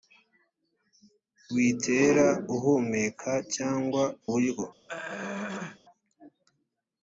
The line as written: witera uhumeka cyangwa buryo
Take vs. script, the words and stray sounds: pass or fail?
fail